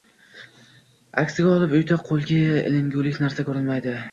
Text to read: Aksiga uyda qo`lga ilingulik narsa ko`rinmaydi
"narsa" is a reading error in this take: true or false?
false